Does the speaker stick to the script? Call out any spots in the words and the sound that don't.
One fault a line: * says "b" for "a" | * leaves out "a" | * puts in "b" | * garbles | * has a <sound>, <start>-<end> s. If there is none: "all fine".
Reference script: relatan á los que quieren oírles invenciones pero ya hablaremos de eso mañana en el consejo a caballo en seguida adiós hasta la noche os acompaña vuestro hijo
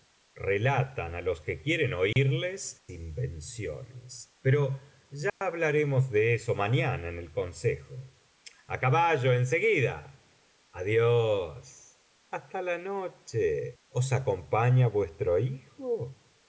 * has a dropout, 2.1-2.2 s
* has a dropout, 5.3-5.4 s